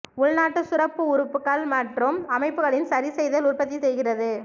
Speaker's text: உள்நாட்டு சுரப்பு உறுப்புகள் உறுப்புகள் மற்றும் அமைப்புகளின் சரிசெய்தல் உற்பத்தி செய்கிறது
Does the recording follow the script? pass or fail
fail